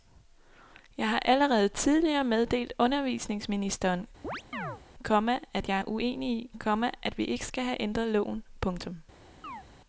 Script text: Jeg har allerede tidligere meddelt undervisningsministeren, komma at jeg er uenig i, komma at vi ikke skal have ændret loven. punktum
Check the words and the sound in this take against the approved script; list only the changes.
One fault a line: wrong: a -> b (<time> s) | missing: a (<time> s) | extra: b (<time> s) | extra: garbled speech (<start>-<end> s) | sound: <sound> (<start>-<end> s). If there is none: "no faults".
sound: chirp (4.2-4.8 s)
sound: chirp (9.4-9.6 s)